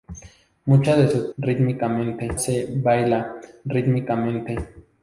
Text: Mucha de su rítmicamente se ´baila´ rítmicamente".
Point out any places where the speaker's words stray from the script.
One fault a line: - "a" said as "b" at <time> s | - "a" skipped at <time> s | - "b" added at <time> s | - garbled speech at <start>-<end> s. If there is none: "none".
none